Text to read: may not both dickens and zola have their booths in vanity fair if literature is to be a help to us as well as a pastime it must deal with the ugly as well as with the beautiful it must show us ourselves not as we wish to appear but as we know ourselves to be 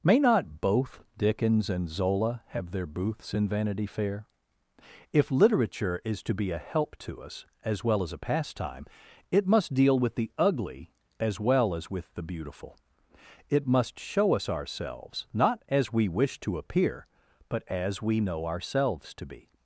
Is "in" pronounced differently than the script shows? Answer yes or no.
no